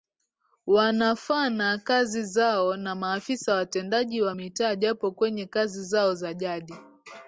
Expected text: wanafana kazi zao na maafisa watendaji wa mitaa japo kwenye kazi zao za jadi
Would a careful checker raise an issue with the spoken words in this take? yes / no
no